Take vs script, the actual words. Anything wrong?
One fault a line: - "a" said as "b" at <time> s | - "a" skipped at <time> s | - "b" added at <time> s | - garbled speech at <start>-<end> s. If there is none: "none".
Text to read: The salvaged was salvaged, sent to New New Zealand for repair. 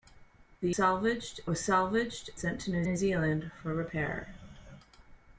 none